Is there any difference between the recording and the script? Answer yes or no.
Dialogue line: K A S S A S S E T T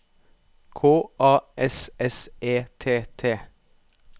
yes